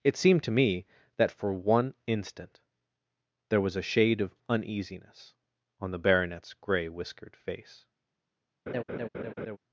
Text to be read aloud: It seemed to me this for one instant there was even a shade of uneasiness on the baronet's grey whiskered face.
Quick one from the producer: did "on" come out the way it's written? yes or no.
yes